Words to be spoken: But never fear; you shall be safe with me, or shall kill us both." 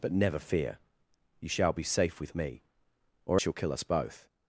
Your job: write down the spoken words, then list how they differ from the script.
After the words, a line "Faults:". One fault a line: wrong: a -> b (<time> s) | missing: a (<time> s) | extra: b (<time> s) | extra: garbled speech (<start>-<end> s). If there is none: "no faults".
But never fear; you shall be safe with me, or shall kill us both."
Faults:
no faults